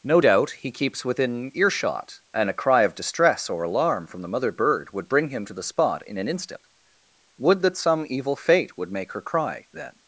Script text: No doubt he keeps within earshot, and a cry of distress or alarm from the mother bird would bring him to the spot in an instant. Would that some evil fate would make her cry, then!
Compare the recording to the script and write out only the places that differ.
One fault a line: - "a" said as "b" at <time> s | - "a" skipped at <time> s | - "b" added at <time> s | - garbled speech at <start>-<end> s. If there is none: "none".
none